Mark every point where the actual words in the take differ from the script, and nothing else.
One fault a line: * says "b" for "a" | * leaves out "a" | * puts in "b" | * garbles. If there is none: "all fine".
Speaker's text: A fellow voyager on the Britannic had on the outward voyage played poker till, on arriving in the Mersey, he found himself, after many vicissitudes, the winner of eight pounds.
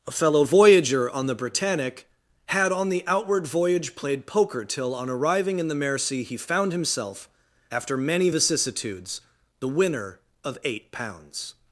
all fine